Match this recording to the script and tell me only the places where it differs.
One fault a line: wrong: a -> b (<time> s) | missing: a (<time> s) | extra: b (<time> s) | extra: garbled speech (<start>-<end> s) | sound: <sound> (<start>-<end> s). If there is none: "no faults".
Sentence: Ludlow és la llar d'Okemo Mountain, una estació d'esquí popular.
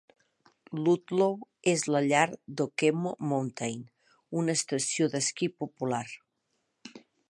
no faults